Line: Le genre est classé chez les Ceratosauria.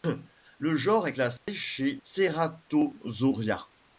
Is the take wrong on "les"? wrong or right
wrong